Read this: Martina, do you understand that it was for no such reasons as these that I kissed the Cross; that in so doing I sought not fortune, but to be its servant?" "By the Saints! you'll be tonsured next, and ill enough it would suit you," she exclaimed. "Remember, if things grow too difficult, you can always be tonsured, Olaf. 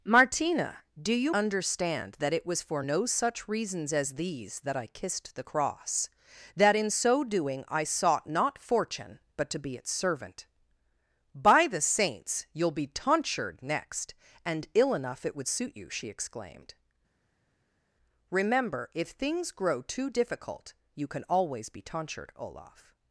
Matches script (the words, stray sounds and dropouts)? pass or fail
pass